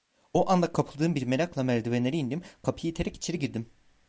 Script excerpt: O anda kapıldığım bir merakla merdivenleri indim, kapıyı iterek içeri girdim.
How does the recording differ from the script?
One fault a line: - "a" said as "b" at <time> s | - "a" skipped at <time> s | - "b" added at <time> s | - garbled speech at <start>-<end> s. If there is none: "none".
none